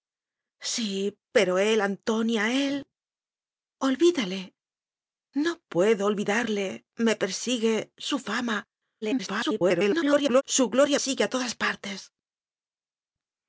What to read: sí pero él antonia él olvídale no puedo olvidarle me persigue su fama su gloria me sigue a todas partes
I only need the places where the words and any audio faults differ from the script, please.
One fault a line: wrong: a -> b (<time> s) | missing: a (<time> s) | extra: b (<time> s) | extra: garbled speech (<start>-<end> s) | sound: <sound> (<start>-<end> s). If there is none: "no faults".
extra: garbled speech (9.0-10.4 s)
missing: me (11.0 s)